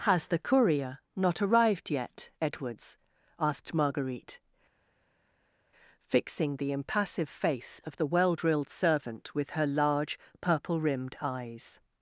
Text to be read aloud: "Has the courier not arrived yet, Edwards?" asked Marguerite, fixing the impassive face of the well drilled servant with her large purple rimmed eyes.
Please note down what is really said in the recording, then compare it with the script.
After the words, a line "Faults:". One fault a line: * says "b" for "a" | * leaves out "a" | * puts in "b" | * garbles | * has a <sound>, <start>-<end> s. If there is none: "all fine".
"Has the courier not arrived yet, Edwards?" asked Marguerite, fixing the impassive face of the well drilled servant with her large purple rimmed eyes.
Faults:
all fine